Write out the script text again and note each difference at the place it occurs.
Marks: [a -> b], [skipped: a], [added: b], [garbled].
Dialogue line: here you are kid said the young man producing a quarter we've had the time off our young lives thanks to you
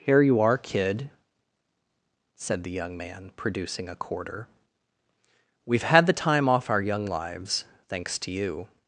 here you are kid said the young man producing a quarter we've had the time off our young lives thanks to you